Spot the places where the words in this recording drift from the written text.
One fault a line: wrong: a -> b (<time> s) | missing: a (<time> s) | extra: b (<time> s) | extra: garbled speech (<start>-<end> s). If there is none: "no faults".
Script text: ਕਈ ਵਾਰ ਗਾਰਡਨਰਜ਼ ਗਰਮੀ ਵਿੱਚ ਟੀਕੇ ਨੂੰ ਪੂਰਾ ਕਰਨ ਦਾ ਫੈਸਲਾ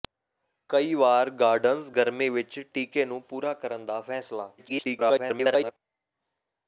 extra: garbled speech (4.6-5.7 s)